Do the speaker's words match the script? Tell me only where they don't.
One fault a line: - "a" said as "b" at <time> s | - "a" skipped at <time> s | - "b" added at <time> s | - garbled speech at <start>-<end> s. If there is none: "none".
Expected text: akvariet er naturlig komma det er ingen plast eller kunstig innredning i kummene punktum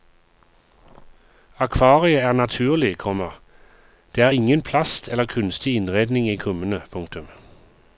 none